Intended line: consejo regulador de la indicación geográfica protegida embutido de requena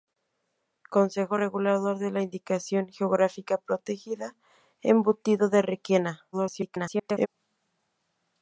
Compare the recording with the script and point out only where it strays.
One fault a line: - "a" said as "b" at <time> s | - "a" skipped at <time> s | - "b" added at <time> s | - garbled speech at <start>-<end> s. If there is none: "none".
- garbled speech at 6.3-7.3 s